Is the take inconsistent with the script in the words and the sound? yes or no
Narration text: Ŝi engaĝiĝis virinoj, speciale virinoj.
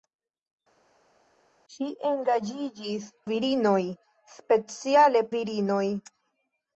no